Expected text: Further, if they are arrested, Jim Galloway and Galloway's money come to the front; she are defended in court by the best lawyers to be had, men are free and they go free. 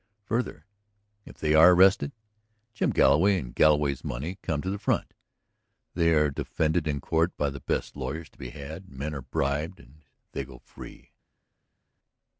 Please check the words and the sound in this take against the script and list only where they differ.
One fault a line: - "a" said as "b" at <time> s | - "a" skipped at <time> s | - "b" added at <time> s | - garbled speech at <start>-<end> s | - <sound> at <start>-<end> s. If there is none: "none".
- "she" said as "they" at 5.9 s
- "free" said as "bribed" at 9.2 s